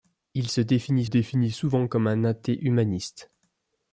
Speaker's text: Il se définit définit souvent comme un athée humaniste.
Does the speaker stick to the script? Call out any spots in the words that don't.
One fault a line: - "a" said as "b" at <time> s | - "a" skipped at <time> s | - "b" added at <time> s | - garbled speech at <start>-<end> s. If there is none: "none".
none